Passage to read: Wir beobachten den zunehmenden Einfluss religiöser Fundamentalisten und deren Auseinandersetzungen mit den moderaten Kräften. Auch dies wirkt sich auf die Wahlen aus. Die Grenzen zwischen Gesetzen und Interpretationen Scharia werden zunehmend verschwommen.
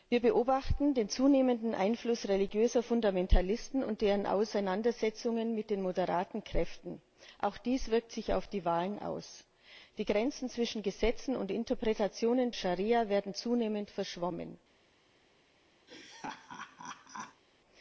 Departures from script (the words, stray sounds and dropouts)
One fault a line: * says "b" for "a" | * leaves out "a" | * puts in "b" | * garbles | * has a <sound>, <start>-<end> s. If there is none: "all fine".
* has a laugh, 15.9-17.4 s